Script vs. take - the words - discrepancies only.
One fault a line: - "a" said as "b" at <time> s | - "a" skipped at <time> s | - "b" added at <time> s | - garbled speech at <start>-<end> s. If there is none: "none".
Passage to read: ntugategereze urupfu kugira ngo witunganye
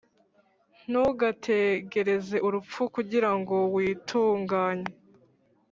none